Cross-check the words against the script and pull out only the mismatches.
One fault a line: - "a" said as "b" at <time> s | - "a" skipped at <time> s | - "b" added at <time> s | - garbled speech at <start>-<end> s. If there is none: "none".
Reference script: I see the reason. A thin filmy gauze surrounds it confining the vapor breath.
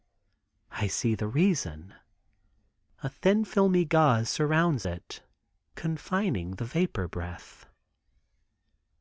none